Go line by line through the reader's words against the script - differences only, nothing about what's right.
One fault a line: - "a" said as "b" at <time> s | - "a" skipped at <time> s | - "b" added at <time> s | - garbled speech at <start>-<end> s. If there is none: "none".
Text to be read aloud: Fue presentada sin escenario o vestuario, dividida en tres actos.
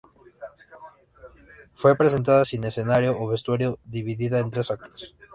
none